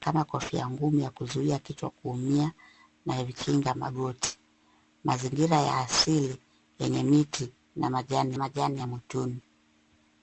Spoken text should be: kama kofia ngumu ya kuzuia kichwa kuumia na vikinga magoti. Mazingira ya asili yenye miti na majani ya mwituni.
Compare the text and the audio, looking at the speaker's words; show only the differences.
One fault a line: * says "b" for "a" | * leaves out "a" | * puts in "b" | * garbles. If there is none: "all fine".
* puts in "majani"